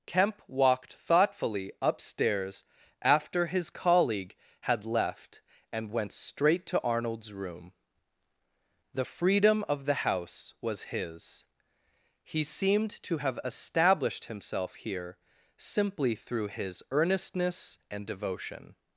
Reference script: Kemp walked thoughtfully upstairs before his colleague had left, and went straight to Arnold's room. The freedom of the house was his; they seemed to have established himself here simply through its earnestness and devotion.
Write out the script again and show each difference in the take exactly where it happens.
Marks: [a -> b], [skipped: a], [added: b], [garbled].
Kemp walked thoughtfully upstairs [before -> after] his colleague had left, and went straight to Arnold's room. The freedom of the house was his; [they -> he] seemed to have established himself here simply through [its -> his] earnestness and devotion.